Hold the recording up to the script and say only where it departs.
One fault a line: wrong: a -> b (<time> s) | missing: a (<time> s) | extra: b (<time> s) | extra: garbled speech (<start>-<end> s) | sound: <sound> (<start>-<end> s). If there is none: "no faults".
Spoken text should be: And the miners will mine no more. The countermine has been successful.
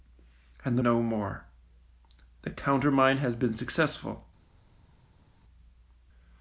missing: miners will mine (0.8 s)